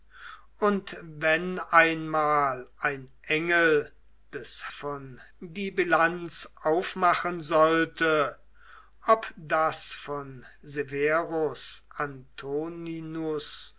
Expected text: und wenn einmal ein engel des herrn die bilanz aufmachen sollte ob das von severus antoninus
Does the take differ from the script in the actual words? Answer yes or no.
yes